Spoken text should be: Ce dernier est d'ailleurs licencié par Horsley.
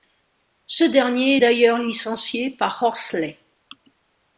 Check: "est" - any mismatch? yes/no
no